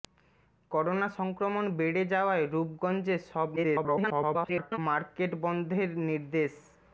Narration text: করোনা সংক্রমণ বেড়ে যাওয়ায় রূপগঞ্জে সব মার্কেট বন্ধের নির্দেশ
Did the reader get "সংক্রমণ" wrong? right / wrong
right